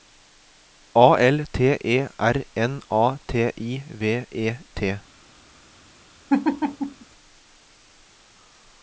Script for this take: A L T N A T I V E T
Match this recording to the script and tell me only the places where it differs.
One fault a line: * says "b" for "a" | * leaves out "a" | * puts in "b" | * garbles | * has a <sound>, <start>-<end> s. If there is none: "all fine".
* puts in "E R"
* has a laugh, 6.3-7.1 s